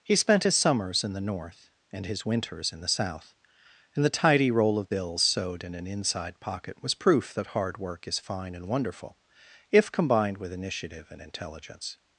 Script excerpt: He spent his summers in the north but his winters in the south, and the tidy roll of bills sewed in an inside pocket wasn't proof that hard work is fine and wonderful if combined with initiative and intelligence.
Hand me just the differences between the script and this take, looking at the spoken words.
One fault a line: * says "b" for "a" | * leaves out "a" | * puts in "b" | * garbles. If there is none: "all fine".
* says "and" for "but"
* says "was" for "wasn't"